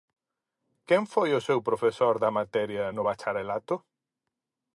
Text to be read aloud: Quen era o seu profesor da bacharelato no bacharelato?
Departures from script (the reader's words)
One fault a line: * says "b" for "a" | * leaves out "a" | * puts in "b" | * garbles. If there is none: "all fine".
* says "foi" for "era"
* says "materia" for "bacharelato"